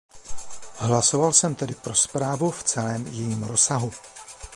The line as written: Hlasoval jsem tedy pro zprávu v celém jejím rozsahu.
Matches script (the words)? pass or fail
pass